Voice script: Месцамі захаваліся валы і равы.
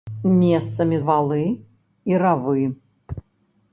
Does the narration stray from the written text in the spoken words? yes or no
yes